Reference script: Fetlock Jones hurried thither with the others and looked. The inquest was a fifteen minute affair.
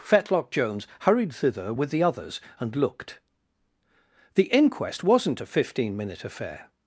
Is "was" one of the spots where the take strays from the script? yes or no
yes